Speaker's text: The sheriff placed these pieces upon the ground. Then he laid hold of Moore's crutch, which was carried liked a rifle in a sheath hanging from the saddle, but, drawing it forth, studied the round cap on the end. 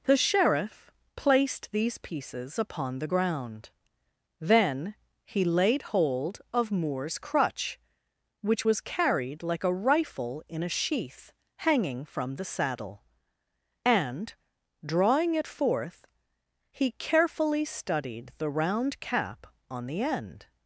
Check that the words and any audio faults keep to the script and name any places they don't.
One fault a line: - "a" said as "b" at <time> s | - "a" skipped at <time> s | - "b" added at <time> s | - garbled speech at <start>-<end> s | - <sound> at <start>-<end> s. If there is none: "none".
- "liked" said as "like" at 9.4 s
- "but" said as "and" at 13.8 s
- "he carefully" added at 16.7 s